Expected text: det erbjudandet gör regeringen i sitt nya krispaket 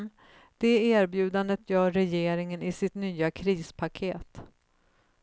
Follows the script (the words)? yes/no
yes